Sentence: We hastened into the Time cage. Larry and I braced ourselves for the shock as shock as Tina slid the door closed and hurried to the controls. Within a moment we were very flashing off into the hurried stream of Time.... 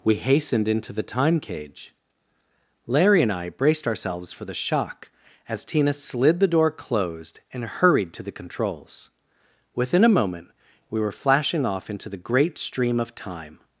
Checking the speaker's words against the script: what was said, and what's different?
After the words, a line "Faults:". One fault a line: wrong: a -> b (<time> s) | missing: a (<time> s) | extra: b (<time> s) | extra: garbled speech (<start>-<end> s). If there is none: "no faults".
We hastened into the Time cage. Larry and I braced ourselves for the shock as Tina slid the door closed and hurried to the controls. Within a moment we were flashing off into the great stream of Time....
Faults:
missing: shock as (5.6 s)
missing: very (11.1 s)
wrong: hurried -> great (12.2 s)